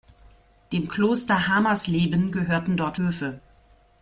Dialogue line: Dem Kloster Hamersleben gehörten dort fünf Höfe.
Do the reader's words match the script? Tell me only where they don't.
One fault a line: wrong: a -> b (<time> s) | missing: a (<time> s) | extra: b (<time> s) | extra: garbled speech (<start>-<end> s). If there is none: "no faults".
missing: fünf (3.0 s)